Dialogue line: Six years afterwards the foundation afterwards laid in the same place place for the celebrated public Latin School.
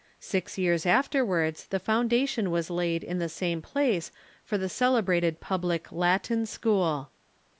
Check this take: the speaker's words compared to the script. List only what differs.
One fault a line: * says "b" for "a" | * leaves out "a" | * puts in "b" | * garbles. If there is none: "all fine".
* says "was" for "afterwards"
* leaves out "place"